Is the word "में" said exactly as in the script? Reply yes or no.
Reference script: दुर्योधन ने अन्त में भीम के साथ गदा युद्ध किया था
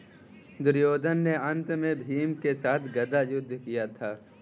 yes